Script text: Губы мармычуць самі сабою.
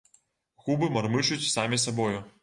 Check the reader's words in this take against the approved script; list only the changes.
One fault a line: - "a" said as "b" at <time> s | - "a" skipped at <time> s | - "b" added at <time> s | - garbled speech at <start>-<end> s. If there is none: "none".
none